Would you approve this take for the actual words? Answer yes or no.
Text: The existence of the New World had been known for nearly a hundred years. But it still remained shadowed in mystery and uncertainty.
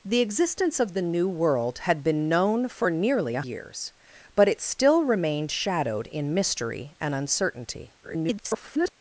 no